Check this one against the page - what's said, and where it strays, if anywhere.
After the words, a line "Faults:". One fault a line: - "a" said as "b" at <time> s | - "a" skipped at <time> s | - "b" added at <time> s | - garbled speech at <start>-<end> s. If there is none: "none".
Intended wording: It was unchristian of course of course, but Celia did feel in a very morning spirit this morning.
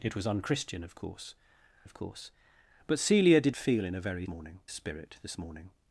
It was unchristian of course of course, but Celia did feel in a very morning spirit this morning.
Faults:
none